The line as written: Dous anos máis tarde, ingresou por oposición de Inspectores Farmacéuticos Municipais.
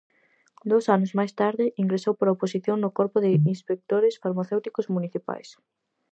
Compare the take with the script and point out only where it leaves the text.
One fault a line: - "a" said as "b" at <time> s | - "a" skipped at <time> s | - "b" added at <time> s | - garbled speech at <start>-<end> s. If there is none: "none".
- "no Corpo" added at 2.8 s